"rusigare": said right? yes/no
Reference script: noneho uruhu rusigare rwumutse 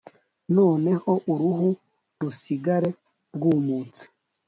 yes